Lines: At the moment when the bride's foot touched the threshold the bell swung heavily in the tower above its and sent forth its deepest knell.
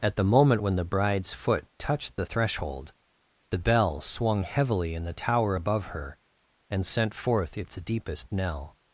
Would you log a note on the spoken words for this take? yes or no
yes